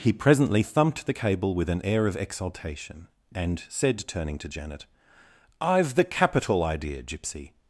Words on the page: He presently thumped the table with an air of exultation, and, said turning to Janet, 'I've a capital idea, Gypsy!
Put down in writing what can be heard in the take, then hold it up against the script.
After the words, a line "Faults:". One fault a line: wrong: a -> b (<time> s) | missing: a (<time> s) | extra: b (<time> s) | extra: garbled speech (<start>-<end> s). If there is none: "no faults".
He presently thumped the cable with an air of exultation, and, said turning to Janet, 'I've the capital idea, Gypsy!
Faults:
wrong: table -> cable (1.1 s)
wrong: a -> the (6.0 s)